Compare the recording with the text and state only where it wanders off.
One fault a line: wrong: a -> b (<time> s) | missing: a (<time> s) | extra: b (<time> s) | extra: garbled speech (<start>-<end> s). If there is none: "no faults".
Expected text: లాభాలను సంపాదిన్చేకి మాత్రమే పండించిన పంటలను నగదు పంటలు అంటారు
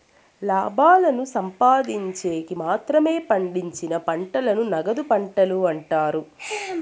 no faults